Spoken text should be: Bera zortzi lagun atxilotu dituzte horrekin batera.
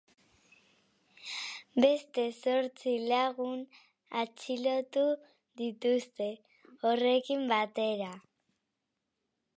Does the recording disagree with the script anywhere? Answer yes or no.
yes